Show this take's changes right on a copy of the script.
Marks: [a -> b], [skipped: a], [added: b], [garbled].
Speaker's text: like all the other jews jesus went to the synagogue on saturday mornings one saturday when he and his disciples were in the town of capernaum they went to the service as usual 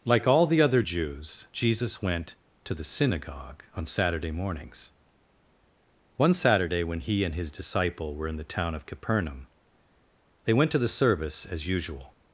like all the other jews jesus went to the synagogue on saturday mornings one saturday when he and his [disciples -> disciple] were in the town of capernaum they went to the service as usual